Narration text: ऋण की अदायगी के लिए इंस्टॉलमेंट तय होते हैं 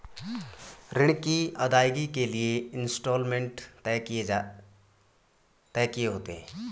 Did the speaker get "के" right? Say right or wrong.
right